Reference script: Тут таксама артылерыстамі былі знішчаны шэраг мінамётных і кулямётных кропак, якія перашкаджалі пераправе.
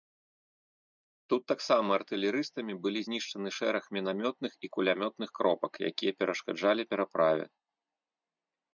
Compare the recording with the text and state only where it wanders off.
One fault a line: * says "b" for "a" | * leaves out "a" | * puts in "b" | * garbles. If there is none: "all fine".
all fine